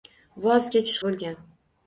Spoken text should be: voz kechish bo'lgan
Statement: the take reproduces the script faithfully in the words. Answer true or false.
true